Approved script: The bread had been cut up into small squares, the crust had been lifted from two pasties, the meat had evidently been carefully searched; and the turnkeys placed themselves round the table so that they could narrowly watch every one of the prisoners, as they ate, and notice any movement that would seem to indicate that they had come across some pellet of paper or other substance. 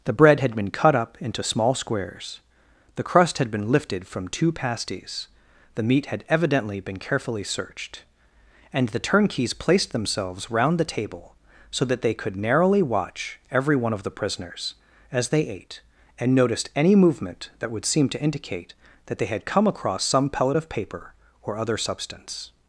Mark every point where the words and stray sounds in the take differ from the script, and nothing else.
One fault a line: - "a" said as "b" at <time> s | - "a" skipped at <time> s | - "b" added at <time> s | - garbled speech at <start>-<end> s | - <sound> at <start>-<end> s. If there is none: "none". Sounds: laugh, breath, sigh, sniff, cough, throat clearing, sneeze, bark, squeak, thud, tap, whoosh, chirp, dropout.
- "notice" said as "noticed" at 16.4 s